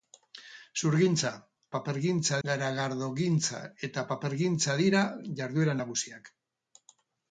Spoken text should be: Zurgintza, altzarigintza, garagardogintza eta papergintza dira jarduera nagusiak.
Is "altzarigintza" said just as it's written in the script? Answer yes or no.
no